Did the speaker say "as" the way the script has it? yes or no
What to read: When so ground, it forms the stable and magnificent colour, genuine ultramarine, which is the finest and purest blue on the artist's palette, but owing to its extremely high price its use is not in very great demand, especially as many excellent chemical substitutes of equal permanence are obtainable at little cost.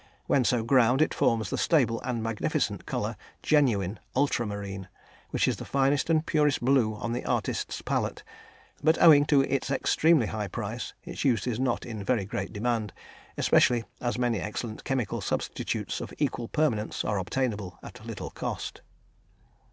yes